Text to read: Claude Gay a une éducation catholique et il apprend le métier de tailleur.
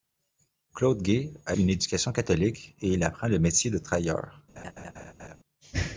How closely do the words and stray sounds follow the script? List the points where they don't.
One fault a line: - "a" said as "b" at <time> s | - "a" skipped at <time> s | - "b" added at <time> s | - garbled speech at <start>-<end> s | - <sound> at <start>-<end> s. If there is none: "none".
- laugh at 4.6-5.4 s